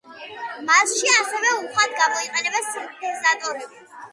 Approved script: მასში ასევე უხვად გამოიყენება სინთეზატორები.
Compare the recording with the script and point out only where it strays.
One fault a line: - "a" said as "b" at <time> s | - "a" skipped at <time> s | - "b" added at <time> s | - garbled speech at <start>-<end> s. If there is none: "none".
none